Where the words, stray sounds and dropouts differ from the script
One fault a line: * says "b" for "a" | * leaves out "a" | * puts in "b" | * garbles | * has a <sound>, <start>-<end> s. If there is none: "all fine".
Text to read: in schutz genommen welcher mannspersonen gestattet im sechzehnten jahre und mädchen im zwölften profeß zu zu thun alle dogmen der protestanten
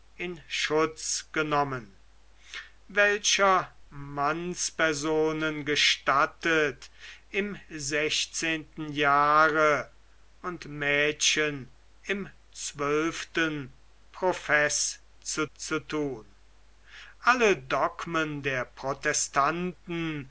all fine